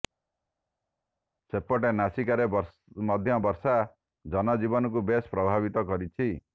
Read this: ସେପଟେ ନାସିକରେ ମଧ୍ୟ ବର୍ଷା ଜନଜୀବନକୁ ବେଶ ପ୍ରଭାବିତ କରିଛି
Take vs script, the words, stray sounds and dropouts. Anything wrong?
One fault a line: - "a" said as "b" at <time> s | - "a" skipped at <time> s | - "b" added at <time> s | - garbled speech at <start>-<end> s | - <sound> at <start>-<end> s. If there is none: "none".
none